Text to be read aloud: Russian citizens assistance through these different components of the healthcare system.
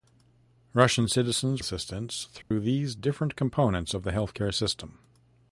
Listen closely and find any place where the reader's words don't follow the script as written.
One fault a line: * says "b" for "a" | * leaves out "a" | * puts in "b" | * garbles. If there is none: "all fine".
all fine